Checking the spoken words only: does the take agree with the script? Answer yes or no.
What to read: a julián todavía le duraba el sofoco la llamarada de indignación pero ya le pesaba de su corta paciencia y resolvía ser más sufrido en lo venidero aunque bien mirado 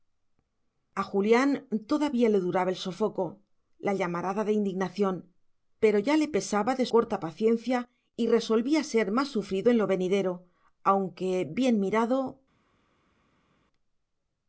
no